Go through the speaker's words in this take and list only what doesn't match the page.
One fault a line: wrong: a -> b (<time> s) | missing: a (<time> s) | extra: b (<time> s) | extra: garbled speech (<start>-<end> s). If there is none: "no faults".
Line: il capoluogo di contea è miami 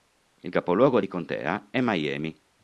no faults